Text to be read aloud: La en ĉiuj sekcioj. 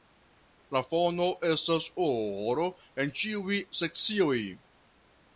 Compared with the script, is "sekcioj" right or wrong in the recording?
right